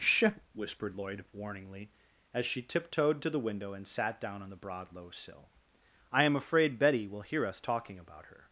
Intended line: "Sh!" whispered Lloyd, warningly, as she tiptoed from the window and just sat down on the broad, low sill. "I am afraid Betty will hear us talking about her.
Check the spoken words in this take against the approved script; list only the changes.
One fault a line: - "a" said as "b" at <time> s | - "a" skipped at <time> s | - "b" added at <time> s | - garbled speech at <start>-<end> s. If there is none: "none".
- "from" said as "to" at 3.2 s
- "just" skipped at 3.9 s